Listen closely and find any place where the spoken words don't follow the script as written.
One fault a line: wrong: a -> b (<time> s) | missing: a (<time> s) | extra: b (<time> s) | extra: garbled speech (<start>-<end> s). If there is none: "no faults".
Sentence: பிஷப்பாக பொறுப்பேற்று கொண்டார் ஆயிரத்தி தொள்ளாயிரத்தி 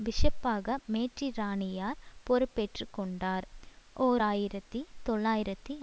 extra: மேற்றிராணியார் (0.9 s)
extra: ஓர் (4.0 s)